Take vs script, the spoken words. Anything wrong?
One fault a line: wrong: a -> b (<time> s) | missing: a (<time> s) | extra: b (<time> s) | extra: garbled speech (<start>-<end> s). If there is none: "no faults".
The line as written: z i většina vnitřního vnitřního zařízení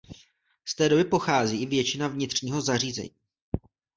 extra: té doby pochází (0.8 s)
missing: vnitřního (2.6 s)